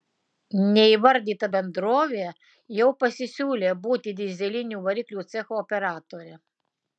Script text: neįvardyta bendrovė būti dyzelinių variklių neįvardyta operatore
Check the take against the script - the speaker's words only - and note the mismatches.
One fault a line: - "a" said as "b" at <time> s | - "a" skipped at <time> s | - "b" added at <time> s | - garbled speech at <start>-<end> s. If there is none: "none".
- "jau pasisiūlė" added at 2.8 s
- "neįvardyta" said as "cecho" at 5.3 s